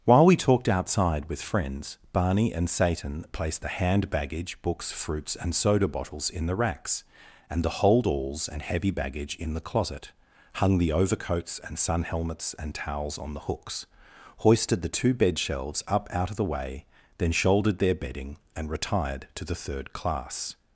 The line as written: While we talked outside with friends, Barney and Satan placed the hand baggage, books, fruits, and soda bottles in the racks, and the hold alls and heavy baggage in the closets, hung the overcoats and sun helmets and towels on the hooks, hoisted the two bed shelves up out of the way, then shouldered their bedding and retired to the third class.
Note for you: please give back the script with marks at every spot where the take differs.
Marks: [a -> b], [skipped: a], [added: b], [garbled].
While we talked outside with friends, Barney and Satan placed the hand baggage, books, fruits, and soda bottles in the racks, and the hold alls and heavy baggage in the [closets, -> closet] hung the overcoats and sun helmets and towels on the hooks, hoisted the two bed shelves up out of the way, then shouldered their bedding and retired to the third class.